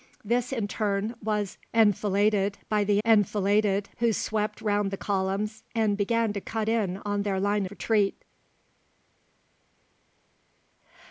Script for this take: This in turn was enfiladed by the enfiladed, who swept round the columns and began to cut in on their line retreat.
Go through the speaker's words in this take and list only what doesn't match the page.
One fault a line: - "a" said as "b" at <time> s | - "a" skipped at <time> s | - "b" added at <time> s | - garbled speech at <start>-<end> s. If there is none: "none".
none